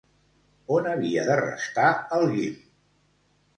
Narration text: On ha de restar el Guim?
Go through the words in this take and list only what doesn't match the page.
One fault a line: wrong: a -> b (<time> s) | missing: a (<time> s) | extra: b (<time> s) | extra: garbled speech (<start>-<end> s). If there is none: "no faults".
wrong: ha -> havia (0.9 s)